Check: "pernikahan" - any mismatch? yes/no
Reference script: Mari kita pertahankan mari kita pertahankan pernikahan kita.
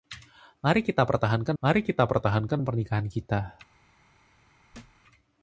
no